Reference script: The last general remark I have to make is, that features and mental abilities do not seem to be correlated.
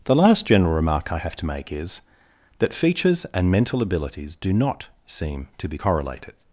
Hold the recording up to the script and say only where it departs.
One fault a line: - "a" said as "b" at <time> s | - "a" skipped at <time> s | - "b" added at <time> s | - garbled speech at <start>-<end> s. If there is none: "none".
none